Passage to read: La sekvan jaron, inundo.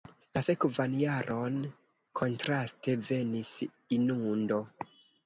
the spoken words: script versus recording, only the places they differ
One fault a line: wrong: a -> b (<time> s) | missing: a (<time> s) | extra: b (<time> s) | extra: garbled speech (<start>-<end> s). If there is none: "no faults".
extra: kontraste venis (2.2 s)